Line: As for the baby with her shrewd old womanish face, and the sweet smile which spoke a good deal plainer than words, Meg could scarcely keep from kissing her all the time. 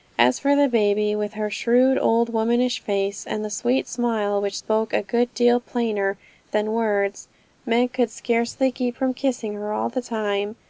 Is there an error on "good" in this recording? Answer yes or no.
no